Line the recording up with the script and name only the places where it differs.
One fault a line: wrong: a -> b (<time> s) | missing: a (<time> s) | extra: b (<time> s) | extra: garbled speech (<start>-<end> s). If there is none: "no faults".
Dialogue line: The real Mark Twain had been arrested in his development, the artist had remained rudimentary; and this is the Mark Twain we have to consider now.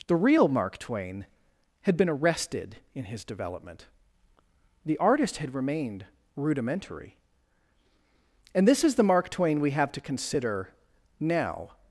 no faults